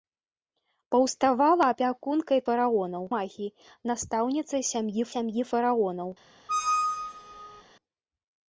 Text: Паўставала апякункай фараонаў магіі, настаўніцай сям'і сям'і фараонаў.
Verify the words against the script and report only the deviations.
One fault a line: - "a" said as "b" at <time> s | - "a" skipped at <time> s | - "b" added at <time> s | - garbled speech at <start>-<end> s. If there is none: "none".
none